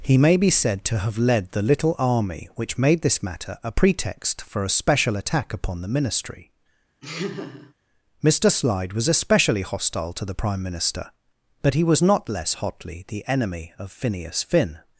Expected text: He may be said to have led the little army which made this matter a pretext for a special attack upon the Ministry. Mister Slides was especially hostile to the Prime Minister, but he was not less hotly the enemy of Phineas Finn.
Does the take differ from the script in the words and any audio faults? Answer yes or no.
yes